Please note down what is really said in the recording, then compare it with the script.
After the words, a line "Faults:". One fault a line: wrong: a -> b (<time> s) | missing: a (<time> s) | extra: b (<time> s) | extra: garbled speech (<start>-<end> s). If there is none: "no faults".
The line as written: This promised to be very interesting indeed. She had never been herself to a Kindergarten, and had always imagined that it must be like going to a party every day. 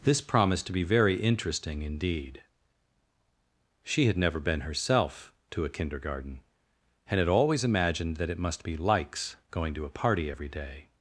This promised to be very interesting indeed. She had never been herself to a Kindergarten, and had always imagined that it must be likes going to a party every day.
Faults:
wrong: like -> likes (8.8 s)